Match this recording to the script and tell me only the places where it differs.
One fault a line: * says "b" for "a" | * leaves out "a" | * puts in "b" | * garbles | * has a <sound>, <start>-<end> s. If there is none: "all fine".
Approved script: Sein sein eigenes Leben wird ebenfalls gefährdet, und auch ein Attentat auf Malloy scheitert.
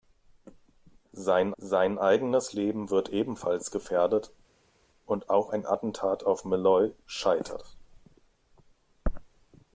all fine